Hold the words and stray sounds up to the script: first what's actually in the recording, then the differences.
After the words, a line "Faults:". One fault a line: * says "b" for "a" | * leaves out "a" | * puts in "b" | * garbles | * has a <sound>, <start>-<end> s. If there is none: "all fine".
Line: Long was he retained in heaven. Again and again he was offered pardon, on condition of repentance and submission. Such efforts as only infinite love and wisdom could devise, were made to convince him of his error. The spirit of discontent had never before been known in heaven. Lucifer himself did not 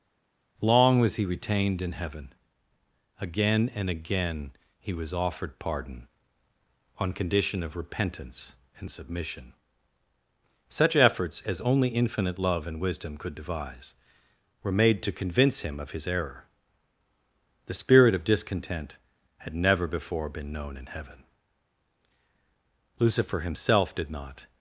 Long was he retained in heaven. Again and again he was offered pardon, on condition of repentance and submission. Such efforts as only infinite love and wisdom could devise, were made to convince him of his error. The spirit of discontent had never before been known in heaven. Lucifer himself did not
Faults:
all fine